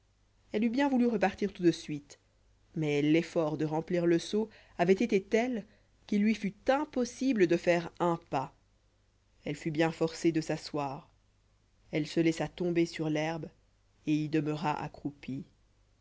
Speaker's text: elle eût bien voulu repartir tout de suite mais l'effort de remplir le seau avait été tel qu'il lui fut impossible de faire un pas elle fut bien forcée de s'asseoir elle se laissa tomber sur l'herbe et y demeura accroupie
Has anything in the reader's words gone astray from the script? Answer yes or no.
no